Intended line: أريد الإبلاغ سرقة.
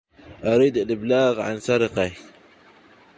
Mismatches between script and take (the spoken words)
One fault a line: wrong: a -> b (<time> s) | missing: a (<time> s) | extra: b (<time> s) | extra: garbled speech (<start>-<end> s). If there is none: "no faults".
extra: عن (1.4 s)